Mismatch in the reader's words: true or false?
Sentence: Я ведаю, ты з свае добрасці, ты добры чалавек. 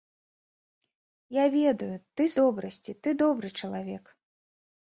true